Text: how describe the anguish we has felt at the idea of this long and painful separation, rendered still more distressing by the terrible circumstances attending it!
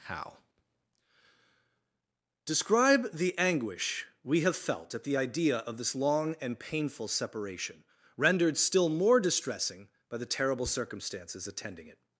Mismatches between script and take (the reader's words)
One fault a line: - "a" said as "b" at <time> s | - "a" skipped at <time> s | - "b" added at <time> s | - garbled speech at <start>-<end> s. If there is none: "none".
- "has" said as "have" at 4.4 s